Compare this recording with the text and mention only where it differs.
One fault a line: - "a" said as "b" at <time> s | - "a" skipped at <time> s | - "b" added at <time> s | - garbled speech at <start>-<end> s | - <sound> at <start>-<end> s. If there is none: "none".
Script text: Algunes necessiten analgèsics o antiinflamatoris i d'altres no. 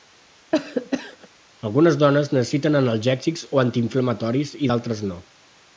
- cough at 0.5-1.3 s
- "dones" added at 2.0 s